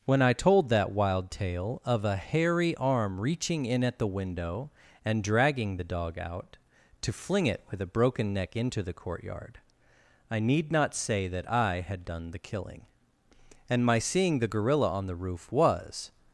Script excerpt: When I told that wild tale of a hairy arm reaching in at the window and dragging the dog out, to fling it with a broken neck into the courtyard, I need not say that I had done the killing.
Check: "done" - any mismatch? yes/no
no